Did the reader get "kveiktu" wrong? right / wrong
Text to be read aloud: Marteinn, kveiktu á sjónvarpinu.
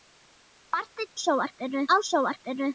wrong